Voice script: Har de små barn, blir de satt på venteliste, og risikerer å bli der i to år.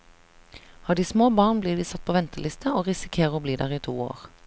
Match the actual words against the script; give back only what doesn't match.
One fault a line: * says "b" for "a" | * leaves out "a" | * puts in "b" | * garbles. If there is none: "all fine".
all fine